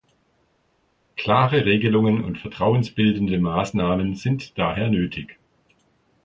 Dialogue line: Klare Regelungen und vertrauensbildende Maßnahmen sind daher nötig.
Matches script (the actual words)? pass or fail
pass